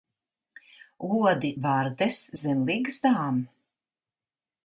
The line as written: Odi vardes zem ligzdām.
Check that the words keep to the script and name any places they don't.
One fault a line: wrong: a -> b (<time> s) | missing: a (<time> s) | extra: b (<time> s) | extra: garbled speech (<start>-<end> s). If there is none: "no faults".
no faults